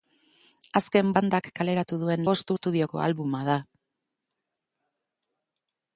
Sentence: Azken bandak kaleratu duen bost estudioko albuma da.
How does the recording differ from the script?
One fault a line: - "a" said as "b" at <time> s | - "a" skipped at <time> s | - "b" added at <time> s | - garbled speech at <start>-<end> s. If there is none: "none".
none